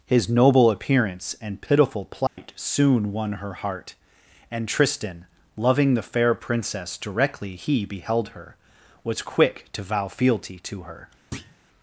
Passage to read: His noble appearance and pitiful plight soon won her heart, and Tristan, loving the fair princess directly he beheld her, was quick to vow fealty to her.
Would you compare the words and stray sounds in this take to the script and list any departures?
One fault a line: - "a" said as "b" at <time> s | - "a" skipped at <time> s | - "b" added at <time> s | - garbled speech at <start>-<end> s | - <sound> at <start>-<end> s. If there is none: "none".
- dropout at 2.3-2.4 s
- thud at 11.3-11.6 s